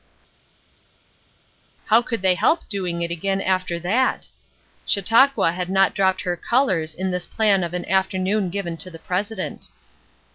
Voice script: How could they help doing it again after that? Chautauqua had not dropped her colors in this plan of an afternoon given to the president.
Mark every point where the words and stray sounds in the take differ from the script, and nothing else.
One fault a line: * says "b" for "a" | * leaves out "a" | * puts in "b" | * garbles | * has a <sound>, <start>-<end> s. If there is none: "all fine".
all fine